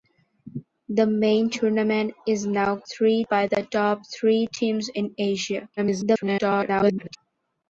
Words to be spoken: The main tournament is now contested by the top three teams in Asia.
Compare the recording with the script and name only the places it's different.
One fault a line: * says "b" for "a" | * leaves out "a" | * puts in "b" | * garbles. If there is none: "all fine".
* says "three" for "contested"
* garbles